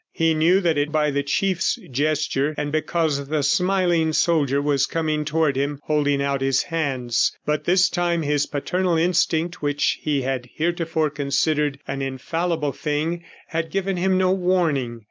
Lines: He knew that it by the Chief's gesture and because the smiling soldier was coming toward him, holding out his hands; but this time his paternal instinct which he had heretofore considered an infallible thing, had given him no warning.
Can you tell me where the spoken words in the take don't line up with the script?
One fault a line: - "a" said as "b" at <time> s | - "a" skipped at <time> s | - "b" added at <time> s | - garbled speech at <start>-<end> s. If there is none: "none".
none